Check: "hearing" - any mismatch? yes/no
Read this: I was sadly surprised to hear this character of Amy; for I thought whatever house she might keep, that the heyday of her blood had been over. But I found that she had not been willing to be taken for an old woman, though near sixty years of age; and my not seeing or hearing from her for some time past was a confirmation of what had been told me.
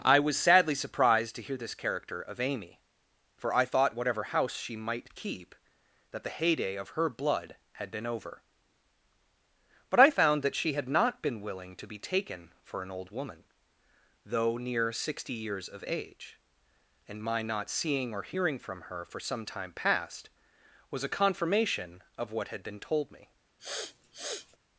no